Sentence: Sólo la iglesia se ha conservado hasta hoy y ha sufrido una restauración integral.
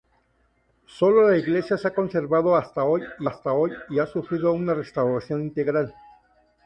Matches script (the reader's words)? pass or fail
fail